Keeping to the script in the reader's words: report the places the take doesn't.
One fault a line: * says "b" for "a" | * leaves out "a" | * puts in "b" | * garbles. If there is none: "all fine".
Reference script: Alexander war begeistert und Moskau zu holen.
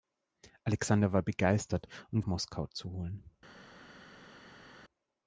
all fine